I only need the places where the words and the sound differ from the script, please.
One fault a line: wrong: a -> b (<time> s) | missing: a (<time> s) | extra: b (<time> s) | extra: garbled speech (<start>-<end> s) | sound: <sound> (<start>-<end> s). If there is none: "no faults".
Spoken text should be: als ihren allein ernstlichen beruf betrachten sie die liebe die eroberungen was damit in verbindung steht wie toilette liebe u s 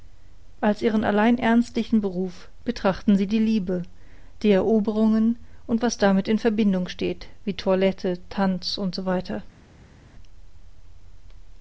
extra: und (5.7 s)
wrong: liebe -> tanz (8.3 s)